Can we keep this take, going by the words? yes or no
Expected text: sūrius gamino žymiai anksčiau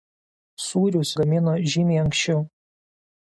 yes